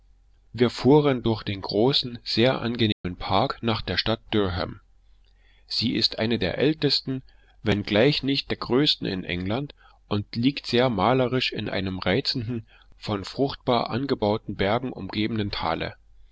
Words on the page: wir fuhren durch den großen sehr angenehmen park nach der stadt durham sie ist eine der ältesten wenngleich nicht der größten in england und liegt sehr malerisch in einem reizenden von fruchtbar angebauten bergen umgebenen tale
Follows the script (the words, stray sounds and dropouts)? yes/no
no